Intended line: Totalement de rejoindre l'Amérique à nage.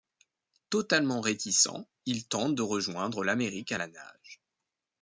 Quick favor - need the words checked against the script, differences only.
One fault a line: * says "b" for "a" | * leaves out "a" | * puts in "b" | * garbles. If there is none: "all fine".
* puts in "réticent il tente"
* puts in "la"